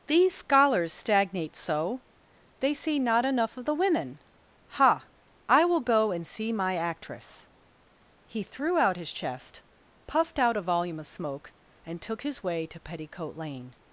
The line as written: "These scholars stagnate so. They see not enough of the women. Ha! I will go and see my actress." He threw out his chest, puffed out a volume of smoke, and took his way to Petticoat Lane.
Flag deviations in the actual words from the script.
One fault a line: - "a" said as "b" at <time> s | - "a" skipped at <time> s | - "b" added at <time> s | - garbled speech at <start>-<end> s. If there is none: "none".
none